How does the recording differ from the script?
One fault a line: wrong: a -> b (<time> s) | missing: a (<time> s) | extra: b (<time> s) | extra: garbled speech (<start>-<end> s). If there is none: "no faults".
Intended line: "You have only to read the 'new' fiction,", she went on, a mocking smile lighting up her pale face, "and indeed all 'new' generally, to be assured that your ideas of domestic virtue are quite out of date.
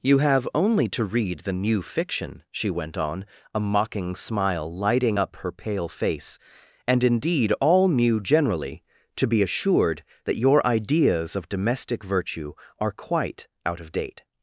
no faults